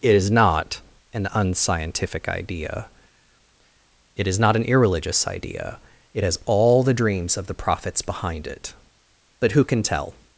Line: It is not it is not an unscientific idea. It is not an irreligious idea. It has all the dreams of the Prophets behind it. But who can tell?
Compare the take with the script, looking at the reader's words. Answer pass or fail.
fail